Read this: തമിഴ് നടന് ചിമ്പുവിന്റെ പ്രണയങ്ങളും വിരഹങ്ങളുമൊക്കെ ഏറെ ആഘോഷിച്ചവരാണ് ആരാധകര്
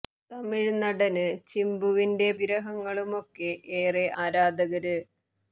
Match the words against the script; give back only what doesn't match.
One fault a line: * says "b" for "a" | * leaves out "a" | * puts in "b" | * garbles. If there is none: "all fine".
* leaves out "പ്രണയങ്ങളും"
* leaves out "ആഘോഷിച്ചവരാണ്"